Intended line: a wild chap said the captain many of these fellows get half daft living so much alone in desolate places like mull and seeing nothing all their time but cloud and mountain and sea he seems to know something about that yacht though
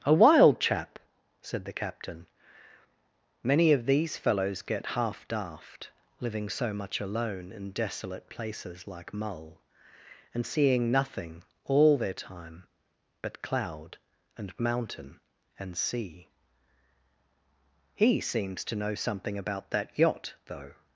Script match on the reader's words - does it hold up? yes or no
yes